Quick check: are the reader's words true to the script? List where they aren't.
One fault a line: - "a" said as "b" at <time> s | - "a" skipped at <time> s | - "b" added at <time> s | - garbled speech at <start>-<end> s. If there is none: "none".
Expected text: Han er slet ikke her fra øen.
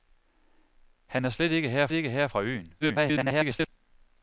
- "ikke her" added at 1.9 s
- garbled speech at 2.8-3.7 s